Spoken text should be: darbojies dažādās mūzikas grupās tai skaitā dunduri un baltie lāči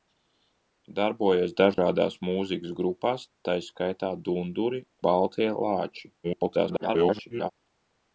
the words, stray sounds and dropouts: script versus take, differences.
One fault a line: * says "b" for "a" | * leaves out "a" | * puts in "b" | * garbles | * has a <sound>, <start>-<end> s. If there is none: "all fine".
* has a dropout, 1.7-1.8 s
* leaves out "un"
* garbles